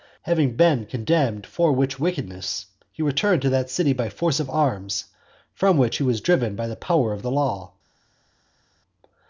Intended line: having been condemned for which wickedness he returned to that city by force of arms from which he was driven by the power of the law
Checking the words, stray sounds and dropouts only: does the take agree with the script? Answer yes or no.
yes